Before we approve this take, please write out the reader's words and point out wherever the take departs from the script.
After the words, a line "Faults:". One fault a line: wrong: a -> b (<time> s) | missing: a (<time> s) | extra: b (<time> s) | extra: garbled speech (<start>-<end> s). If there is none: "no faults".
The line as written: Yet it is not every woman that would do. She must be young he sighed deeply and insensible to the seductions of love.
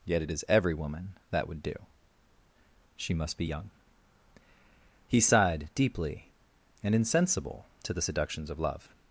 Yet it is every woman that would do. She must be young he sighed deeply and insensible to the seductions of love.
Faults:
missing: not (0.5 s)